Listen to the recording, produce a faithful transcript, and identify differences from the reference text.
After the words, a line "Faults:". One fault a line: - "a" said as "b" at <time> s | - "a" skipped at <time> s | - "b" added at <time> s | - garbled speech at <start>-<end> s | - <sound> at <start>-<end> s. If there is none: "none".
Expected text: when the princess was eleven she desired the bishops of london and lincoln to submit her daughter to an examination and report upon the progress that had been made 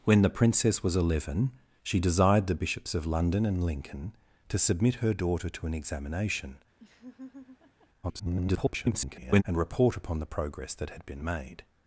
when the princess was eleven she desired the bishops of london and lincoln to submit her daughter to an examination [garbled] and report upon the progress that had been made
Faults:
- laugh at 6.8-7.9 s
- garbled speech at 8.0-9.4 s